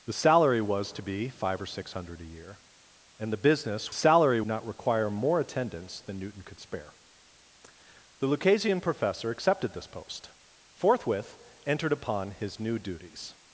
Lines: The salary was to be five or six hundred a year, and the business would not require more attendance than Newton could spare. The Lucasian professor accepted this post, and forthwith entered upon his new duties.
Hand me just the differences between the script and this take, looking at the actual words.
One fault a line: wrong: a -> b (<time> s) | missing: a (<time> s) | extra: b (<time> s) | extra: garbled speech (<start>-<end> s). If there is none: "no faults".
wrong: would -> salary (3.9 s)
missing: and (10.3 s)